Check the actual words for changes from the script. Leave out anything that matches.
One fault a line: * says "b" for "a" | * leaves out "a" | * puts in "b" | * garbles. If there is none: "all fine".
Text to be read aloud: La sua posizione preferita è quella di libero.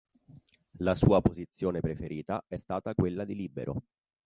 * puts in "stata"